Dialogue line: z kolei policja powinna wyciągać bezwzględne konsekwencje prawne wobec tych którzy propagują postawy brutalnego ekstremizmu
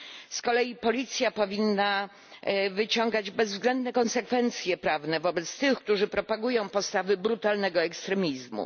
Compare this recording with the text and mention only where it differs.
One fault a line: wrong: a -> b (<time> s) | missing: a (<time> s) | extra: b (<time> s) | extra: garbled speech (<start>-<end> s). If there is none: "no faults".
no faults